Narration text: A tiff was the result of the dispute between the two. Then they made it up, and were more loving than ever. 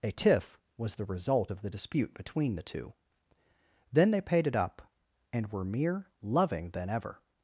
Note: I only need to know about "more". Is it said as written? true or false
false